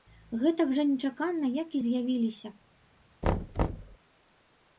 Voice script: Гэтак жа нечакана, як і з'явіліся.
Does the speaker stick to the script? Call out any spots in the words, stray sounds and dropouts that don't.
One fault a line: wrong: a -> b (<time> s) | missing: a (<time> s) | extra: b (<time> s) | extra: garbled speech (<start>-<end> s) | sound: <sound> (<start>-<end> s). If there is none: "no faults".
sound: thud (3.2-4.0 s)